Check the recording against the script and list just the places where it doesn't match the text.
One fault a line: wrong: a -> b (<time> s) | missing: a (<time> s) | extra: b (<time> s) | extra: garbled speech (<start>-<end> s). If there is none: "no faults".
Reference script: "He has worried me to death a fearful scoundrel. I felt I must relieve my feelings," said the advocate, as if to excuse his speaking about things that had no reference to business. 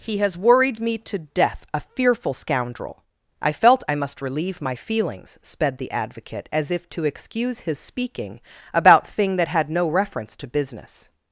wrong: said -> sped (5.4 s)
wrong: things -> thing (9.1 s)